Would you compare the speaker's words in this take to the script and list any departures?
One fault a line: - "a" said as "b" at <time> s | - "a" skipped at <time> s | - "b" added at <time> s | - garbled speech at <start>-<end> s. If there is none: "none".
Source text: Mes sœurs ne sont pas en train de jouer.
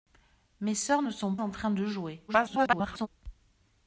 - "pas" skipped at 1.4 s
- garbled speech at 2.3-3.1 s